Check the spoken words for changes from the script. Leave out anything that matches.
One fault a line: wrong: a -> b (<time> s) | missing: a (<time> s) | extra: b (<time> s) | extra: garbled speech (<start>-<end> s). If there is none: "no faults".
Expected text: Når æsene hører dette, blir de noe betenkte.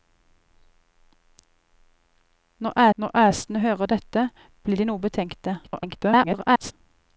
extra: når (3.0 s)
extra: garbled speech (5.6-6.7 s)